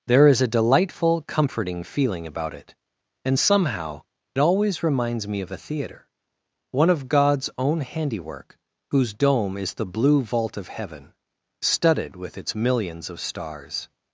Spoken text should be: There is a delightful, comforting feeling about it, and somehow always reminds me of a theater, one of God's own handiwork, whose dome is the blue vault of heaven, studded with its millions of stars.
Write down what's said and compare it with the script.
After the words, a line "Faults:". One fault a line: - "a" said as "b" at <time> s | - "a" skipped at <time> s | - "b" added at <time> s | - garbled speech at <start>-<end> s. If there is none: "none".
There is a delightful, comforting feeling about it, and somehow always reminds me of a theater, one of God's own handiwork, whose dome is the blue vault of heaven, studded with its millions of stars.
Faults:
none